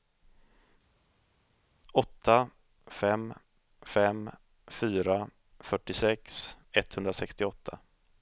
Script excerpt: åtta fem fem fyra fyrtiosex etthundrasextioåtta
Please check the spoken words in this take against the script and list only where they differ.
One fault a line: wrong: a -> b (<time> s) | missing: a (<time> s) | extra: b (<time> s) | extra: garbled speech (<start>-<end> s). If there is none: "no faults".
no faults